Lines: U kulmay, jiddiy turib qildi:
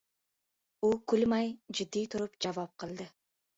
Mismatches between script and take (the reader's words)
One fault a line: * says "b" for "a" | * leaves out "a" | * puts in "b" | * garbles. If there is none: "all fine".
* puts in "javob"